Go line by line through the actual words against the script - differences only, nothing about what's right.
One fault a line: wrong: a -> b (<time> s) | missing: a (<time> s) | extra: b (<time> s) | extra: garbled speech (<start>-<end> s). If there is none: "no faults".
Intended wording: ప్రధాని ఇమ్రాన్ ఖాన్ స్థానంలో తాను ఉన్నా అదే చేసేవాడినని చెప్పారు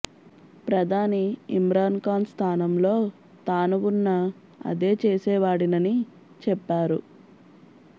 no faults